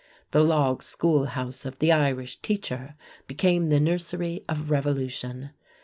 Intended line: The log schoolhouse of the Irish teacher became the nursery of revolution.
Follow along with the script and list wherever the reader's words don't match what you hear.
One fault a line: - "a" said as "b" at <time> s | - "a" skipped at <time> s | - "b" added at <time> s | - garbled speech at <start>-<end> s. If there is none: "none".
none